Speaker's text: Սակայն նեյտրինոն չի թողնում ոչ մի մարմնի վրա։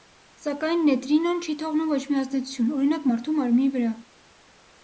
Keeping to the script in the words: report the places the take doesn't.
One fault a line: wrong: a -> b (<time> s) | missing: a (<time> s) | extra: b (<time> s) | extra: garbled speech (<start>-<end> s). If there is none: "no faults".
extra: ազդեցություն օրինակ մարդու (2.2 s)